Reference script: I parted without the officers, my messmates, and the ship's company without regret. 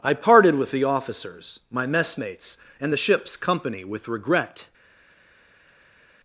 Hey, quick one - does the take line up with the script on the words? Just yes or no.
no